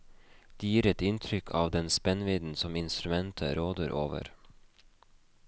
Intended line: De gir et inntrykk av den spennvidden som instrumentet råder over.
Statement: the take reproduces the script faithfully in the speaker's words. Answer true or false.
true